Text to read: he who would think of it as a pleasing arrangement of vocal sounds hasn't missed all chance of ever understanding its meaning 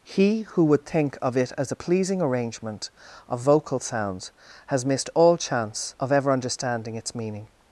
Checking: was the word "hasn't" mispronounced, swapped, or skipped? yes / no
yes